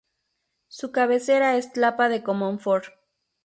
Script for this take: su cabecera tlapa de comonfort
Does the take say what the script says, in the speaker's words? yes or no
no